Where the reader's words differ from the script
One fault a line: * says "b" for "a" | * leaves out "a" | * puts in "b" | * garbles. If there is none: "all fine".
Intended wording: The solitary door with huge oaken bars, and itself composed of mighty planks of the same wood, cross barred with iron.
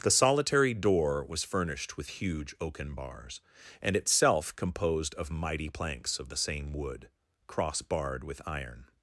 * puts in "was furnished"